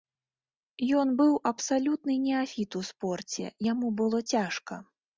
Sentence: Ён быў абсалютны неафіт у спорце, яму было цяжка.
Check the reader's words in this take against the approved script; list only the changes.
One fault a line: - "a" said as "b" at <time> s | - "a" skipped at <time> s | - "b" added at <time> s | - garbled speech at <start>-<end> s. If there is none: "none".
none